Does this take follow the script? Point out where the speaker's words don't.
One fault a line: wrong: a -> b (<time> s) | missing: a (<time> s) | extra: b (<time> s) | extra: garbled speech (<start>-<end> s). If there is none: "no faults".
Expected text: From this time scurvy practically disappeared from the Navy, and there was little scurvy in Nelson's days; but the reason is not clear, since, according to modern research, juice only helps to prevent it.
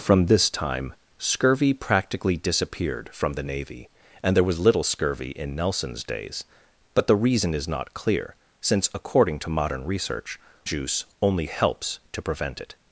no faults